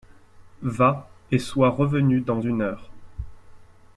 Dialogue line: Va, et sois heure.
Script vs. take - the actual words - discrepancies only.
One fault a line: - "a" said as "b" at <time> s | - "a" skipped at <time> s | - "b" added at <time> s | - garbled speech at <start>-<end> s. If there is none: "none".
- "revenu dans une" added at 1.7 s